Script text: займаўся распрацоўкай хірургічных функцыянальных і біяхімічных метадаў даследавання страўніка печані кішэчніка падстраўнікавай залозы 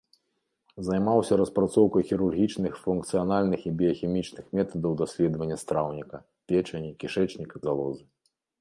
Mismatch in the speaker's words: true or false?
true